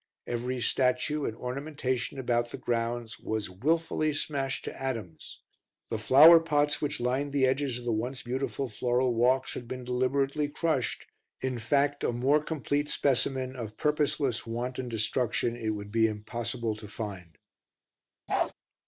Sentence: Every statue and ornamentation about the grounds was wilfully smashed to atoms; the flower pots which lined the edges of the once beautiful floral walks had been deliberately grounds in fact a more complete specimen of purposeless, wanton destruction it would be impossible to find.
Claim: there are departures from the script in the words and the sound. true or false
true